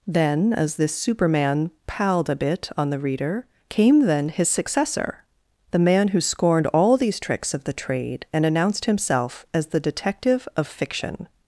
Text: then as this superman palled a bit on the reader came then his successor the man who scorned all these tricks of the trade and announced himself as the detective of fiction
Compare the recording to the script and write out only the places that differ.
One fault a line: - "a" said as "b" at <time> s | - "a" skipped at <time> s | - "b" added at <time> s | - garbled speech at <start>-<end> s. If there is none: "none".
none